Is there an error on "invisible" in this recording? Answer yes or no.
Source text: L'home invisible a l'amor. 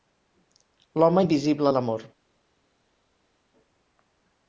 no